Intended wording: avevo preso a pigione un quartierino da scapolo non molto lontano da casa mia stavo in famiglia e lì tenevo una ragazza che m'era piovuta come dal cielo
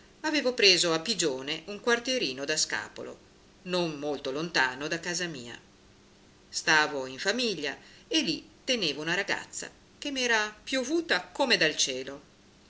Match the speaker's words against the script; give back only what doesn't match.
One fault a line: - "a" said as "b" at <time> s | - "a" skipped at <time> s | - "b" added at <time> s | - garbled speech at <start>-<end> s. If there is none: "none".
none